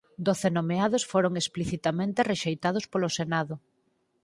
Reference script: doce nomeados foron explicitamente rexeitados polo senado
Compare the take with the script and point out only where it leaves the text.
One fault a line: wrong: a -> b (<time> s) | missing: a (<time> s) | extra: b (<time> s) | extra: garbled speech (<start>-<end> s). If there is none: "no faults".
no faults